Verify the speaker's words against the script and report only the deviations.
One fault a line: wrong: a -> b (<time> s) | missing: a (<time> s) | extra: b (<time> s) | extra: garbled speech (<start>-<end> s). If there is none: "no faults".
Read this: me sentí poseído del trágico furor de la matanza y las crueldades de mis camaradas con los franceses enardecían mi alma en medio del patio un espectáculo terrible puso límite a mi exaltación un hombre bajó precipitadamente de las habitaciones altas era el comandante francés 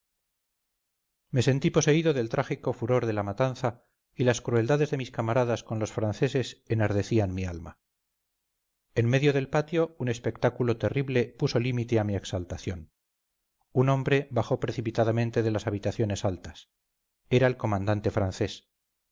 no faults